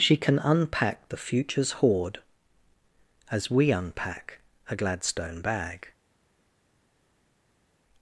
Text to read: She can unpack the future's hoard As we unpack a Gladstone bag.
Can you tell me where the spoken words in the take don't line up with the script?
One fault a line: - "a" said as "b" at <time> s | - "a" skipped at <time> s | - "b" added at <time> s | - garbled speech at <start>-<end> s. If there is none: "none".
none